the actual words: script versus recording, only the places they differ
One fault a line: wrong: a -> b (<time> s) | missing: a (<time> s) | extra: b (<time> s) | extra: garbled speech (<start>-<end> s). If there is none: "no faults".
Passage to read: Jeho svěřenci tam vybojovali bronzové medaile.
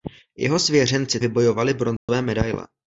missing: tam (1.2 s)